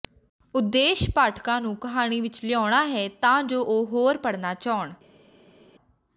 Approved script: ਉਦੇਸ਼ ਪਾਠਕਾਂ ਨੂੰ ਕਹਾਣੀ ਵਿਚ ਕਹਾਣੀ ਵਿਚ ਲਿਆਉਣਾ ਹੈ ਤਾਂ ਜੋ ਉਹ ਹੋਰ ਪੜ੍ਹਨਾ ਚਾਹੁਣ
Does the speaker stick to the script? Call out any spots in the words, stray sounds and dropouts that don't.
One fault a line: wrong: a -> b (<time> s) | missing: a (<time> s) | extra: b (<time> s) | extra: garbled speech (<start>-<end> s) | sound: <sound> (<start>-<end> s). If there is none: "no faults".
missing: ਕਹਾਣੀ ਵਿਚ (2.4 s)